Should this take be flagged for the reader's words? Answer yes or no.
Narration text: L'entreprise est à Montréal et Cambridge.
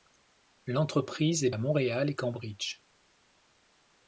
no